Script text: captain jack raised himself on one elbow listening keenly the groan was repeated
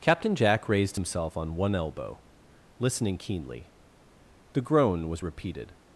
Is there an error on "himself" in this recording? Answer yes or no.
no